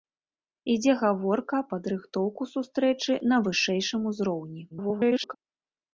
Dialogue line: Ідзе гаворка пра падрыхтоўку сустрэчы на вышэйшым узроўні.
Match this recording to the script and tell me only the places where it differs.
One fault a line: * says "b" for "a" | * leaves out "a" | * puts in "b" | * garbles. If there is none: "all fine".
* leaves out "пра"
* garbles